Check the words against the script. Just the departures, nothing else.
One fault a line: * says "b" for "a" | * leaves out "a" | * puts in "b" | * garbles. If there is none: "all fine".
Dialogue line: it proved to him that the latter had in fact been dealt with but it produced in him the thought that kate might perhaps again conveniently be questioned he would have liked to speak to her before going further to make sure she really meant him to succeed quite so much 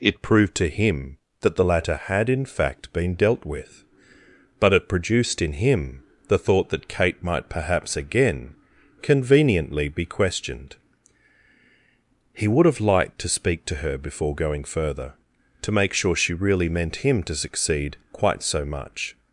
all fine